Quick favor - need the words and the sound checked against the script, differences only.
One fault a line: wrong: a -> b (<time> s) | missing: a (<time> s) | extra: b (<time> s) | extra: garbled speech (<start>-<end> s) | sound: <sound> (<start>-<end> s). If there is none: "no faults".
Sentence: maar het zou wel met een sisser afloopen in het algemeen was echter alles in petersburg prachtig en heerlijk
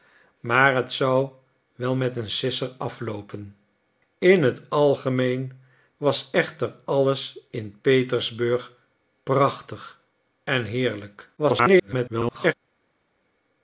extra: garbled speech (11.4-12.5 s)